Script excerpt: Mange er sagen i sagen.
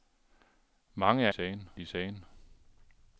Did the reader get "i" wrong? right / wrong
right